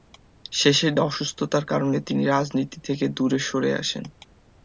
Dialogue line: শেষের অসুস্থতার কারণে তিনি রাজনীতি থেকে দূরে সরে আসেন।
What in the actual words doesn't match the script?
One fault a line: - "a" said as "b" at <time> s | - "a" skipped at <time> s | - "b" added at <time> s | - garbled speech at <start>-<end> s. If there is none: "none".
none